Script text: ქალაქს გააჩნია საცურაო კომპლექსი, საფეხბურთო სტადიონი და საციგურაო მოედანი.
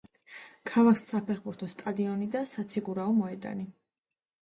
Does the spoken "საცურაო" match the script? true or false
false